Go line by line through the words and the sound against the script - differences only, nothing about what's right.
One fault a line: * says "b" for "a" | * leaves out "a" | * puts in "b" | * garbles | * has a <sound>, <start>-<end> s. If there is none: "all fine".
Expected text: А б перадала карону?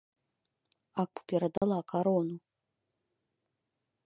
* has a dropout, 1.6-1.6 s